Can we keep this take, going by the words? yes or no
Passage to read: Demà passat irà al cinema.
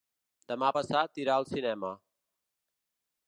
yes